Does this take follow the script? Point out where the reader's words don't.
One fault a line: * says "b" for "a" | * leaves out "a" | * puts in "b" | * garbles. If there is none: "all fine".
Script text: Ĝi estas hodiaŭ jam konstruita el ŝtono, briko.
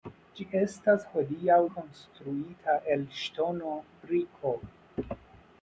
* leaves out "jam"